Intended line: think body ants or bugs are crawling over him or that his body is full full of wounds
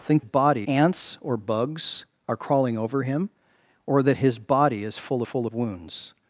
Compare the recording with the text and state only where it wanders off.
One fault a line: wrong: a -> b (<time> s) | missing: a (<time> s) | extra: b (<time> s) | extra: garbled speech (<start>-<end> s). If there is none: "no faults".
no faults